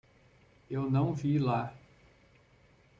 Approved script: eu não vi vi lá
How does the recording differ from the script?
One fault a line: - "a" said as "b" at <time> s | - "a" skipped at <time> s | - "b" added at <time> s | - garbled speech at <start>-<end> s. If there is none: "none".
- "vi" skipped at 1.4 s